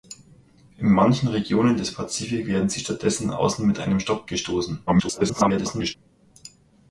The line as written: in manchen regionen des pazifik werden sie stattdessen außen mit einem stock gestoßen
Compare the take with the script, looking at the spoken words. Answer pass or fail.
fail